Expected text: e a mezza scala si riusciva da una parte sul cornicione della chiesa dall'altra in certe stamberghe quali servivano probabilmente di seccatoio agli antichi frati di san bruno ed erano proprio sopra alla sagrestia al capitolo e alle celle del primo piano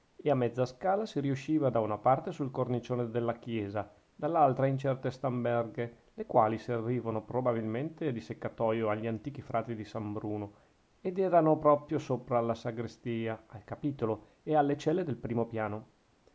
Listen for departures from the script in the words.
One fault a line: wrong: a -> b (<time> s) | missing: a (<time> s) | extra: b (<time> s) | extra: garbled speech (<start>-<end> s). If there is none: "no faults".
extra: le (6.1 s)